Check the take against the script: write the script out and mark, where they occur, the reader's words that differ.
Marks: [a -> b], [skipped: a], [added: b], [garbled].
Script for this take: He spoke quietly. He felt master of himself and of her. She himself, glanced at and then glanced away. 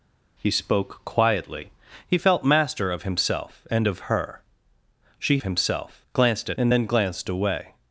He spoke quietly. He felt master of himself and of her. She himself, glanced at and then glanced away.